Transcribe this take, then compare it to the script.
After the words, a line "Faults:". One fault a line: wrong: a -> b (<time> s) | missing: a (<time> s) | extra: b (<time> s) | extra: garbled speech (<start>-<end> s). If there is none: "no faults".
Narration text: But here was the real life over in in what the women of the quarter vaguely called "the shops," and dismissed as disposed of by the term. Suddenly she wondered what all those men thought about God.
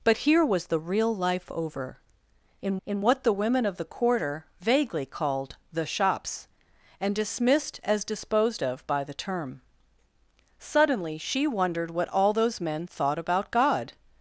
But here was the real life over in in what the women of the quarter vaguely called "the shops," and dismissed as disposed of by the term. Suddenly she wondered what all those men thought about God.
Faults:
no faults